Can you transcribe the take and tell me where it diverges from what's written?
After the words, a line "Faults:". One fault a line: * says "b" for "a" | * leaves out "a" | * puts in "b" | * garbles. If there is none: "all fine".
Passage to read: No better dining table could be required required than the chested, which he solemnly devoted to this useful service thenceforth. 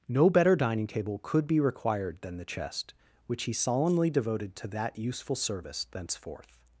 No better dining table could be required than the chest, which he solemnly devoted to that useful service thenceforth.
Faults:
* leaves out "required"
* says "chest" for "chested"
* says "that" for "this"